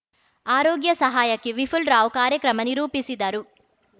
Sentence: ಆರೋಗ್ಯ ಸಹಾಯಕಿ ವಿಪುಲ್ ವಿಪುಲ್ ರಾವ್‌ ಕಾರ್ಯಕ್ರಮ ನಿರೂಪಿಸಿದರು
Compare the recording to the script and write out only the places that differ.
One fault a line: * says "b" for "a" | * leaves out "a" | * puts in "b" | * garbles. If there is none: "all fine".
* leaves out "ವಿಪುಲ್"